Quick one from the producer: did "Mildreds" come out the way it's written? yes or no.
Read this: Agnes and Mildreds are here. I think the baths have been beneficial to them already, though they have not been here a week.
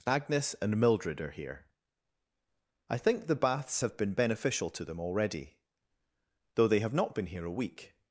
no